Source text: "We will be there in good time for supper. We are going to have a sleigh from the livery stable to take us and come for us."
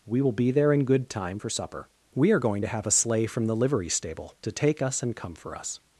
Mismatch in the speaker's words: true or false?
false